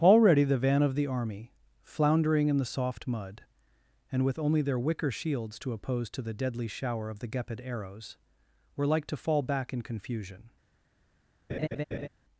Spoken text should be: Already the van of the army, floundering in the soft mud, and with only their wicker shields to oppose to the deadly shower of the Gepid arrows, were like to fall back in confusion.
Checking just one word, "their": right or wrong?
right